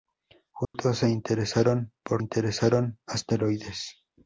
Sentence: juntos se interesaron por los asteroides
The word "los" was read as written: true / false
false